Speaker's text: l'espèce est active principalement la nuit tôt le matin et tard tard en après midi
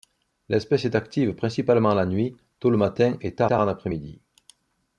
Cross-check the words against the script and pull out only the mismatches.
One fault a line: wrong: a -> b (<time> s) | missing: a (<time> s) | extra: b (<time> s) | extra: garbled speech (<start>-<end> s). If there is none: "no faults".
no faults